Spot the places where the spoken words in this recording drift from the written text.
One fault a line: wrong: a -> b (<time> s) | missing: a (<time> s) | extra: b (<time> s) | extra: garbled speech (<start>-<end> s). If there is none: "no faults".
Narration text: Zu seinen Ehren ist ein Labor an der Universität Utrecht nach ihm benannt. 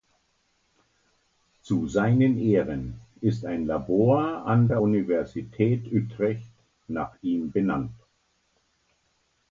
no faults